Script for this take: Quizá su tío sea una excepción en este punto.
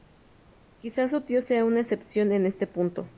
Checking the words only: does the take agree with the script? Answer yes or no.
yes